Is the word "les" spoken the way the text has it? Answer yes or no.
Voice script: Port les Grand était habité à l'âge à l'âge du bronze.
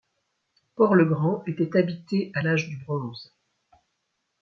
no